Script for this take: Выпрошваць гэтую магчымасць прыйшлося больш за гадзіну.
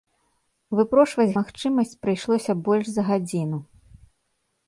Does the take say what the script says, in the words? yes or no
no